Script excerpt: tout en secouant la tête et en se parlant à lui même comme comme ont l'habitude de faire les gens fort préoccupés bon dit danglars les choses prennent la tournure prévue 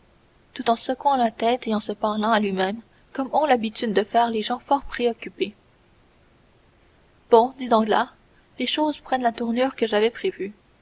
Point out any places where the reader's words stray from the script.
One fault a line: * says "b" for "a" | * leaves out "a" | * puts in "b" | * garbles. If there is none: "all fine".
* leaves out "comme"
* puts in "que j'avais"